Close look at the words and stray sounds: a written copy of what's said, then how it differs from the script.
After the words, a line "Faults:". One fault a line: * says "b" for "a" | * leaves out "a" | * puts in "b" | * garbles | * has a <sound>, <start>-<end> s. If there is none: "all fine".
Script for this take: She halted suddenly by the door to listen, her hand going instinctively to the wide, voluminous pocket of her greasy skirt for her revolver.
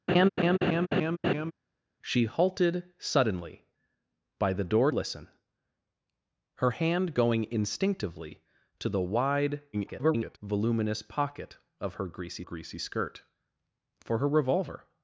She halted suddenly by the door listen, her hand going instinctively to the wide, [garbled] voluminous pocket of her greasy greasy skirt for her revolver.
Faults:
* has a laugh, 0.1-1.5 s
* leaves out "to"
* garbles
* puts in "greasy"